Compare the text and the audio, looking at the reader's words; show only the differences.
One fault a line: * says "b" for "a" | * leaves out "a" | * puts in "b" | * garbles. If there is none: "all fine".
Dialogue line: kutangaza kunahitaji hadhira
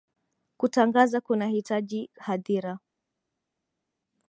all fine